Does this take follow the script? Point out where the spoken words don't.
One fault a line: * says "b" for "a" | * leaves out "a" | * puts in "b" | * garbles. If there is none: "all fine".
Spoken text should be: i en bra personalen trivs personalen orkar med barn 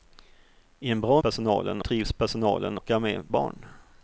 all fine